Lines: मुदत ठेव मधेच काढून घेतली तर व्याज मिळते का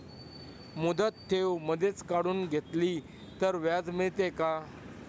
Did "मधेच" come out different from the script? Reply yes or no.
no